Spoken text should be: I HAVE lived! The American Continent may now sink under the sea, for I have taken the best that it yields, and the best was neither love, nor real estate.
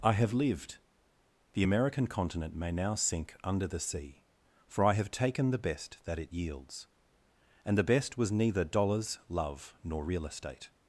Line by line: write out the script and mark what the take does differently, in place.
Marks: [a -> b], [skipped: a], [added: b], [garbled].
I HAVE lived! The American Continent may now sink under the sea, for I have taken the best that it yields, and the best was neither [added: dollars] love, nor real estate.